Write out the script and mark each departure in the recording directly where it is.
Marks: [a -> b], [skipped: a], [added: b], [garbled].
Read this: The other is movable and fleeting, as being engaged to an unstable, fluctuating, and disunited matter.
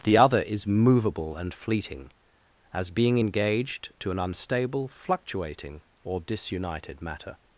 The other is movable and fleeting, as being engaged to an unstable, fluctuating, [and -> or] disunited matter.